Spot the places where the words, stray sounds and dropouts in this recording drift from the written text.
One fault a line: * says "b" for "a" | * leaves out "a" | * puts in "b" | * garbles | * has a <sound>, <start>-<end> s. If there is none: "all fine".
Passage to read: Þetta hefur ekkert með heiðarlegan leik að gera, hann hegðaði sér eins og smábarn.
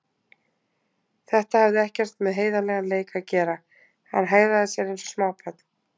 * says "hafði" for "hefur"